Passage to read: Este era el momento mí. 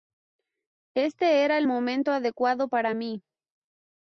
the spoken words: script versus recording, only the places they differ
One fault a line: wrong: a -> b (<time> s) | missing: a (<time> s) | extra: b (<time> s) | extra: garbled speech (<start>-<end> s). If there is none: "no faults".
extra: adecuado para (2.1 s)